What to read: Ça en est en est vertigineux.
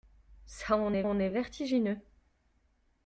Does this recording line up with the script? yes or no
yes